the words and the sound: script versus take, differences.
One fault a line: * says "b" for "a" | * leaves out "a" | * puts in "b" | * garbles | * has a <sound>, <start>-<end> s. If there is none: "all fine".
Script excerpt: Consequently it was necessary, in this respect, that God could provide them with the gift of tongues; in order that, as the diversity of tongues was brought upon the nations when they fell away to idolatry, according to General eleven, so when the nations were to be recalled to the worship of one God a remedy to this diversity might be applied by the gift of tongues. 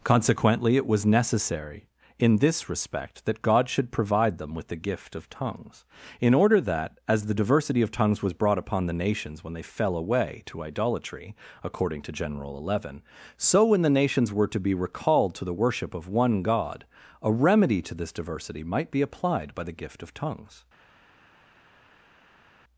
* says "should" for "could"